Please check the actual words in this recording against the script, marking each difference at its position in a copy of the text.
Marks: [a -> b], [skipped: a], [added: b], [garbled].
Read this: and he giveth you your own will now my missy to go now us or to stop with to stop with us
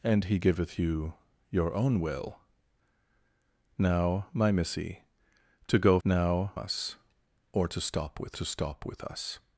and he giveth you your own will now my missy to go now us or to stop with to stop with us